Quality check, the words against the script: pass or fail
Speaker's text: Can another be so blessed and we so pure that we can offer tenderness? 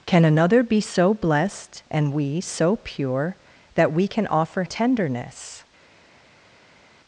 pass